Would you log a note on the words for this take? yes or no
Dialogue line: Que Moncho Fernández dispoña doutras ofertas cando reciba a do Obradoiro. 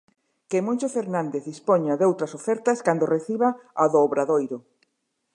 no